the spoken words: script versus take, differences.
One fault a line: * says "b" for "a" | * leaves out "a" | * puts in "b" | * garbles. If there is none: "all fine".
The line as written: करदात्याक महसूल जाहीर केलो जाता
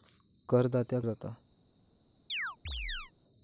* leaves out "महसूल जाहीर केलो"